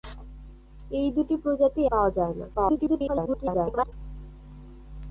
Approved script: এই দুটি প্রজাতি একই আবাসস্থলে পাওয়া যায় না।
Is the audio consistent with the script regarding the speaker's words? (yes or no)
no